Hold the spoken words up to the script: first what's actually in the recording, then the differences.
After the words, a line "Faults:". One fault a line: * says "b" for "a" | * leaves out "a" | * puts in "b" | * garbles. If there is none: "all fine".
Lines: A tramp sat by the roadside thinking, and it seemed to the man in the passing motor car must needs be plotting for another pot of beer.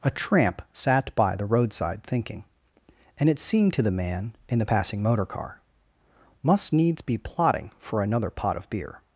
A tramp sat by the roadside thinking, and it seemed to the man in the passing motor car must needs be plotting for another pot of beer.
Faults:
all fine